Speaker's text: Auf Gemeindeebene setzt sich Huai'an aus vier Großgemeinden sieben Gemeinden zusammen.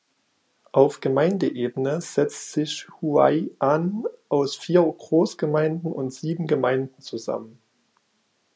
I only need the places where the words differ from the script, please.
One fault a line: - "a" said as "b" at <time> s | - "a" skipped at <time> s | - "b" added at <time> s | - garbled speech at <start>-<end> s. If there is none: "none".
- "und" added at 5.9 s